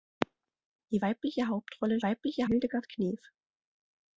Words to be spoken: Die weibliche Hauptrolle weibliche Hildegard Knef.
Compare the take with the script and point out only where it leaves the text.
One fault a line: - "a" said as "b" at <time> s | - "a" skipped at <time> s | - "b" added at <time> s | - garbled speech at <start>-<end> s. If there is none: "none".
none